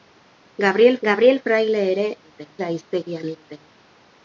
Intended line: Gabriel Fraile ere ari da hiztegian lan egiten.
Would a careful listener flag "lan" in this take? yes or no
yes